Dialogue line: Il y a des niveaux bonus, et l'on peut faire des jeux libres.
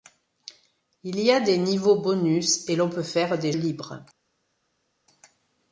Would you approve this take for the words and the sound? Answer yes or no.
no